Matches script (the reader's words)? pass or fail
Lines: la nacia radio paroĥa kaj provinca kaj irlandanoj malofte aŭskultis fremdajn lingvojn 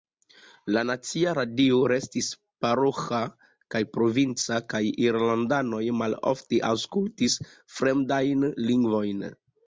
fail